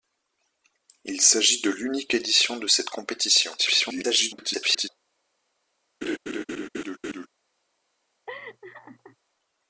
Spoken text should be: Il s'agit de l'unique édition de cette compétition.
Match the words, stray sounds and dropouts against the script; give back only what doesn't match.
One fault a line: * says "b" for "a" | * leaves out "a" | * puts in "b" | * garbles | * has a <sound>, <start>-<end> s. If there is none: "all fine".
* garbles
* has a laugh, 6.0-7.3 s
* has a laugh, 8.3-9.2 s